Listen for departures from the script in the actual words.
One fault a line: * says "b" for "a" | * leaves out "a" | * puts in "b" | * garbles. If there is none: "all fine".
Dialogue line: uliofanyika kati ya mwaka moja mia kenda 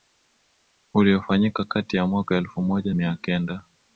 * puts in "elfu"